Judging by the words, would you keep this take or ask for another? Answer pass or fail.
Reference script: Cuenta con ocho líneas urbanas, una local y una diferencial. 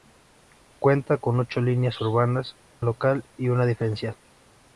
fail